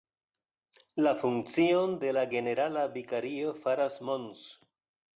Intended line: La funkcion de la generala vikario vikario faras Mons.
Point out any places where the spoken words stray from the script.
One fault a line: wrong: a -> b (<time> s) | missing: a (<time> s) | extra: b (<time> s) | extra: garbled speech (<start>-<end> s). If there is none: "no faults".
missing: vikario (3.6 s)